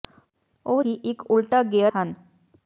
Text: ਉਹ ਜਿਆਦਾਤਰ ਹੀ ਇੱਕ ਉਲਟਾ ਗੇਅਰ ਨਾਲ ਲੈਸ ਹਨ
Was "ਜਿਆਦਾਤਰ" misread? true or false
true